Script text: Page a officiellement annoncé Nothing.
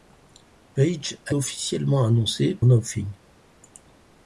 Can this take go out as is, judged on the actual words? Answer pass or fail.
pass